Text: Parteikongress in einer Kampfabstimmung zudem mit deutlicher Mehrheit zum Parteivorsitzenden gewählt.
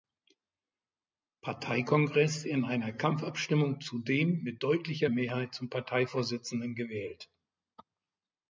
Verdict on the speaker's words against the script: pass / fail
pass